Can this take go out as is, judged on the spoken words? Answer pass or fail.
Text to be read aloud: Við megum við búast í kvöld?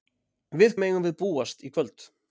pass